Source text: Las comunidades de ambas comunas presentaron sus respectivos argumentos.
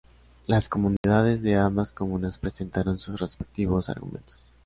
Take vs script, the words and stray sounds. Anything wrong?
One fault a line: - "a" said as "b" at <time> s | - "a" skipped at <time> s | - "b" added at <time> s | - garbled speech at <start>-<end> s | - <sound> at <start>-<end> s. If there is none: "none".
- dropout at 1.0-1.0 s